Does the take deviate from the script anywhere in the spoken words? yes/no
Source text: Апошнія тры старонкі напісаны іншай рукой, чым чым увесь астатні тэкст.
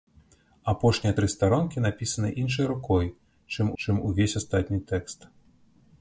no